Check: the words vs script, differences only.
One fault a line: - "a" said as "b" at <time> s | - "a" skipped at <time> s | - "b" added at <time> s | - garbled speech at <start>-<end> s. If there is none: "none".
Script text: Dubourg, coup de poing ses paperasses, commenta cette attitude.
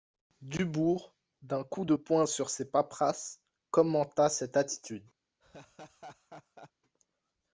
- "d'un" added at 1.4 s
- "sur" added at 2.3 s